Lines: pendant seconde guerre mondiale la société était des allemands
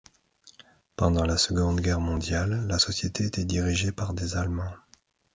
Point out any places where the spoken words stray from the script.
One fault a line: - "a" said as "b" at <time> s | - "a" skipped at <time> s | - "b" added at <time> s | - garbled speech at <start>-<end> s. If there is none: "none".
- "la" added at 1.3 s
- "dirigée par" added at 3.4 s